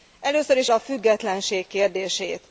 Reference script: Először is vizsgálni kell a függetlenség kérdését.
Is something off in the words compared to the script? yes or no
yes